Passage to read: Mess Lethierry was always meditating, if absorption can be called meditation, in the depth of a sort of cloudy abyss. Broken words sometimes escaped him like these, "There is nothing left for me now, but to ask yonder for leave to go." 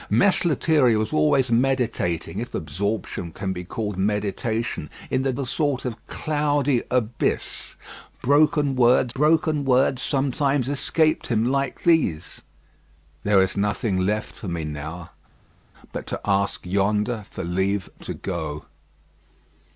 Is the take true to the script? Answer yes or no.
no